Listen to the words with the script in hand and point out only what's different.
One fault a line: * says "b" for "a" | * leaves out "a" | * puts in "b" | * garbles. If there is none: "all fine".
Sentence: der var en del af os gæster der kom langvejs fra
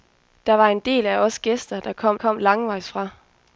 * puts in "kom"